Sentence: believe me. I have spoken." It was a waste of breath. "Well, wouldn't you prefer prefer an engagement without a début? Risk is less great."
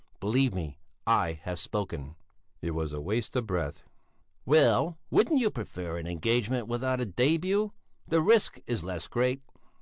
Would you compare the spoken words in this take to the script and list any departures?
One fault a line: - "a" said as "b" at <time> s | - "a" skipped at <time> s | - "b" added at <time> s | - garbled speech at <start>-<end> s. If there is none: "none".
- "prefer" skipped at 6.0 s
- "The" added at 8.1 s